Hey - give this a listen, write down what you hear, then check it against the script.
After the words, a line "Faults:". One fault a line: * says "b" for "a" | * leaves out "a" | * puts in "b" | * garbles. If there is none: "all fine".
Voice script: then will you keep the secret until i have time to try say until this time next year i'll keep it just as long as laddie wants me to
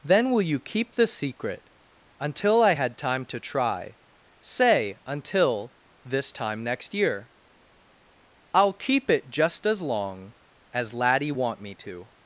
then will you keep the secret until i had time to try say until this time next year i'll keep it just as long as laddie want me to
Faults:
* says "had" for "have"
* says "want" for "wants"